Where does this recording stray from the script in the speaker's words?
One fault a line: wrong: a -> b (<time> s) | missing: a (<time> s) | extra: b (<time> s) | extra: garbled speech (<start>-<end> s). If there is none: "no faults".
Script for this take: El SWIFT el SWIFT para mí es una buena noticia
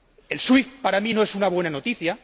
missing: el SWIFT (0.8 s)
extra: no (1.1 s)